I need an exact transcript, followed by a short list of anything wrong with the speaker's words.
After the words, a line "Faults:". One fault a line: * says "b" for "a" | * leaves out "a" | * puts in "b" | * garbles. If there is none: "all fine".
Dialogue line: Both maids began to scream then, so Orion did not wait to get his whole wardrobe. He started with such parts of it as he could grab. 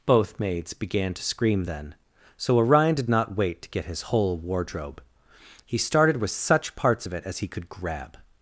Both maids began to scream then, so Orion did not wait to get his whole wardrobe. He started with such parts of it as he could grab.
Faults:
all fine